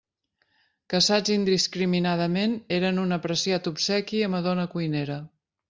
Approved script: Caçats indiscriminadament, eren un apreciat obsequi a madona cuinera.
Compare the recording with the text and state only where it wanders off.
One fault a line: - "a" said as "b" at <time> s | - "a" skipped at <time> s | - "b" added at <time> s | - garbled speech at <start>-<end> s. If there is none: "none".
none